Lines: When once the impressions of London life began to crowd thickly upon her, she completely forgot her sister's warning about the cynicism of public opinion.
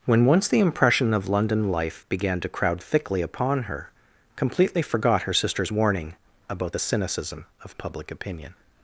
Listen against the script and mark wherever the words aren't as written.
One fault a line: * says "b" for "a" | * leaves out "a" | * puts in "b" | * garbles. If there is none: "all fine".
* says "impression" for "impressions"
* leaves out "she"